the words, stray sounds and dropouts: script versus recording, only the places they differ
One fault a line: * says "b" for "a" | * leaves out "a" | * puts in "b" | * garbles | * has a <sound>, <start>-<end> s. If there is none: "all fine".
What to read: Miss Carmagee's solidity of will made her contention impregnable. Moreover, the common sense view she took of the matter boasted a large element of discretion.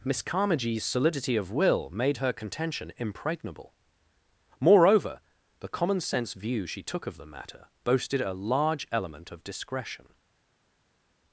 all fine